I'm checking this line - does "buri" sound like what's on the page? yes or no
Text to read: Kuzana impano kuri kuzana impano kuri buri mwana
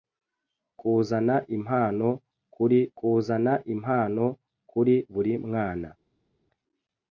yes